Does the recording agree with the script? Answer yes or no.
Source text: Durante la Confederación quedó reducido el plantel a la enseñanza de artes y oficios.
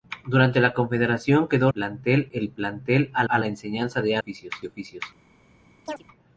no